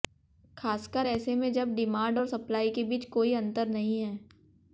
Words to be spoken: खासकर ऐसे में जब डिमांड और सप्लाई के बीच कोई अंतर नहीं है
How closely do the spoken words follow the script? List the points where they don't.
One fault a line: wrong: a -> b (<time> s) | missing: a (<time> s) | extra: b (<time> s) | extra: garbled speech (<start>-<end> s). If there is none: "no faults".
no faults